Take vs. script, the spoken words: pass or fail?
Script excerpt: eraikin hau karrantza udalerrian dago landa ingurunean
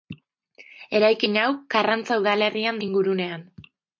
fail